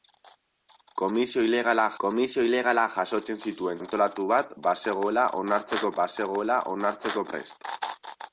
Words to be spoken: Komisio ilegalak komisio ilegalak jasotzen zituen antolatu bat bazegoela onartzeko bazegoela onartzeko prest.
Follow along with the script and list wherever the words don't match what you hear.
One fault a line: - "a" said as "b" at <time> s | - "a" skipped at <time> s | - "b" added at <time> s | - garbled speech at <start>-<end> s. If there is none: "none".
none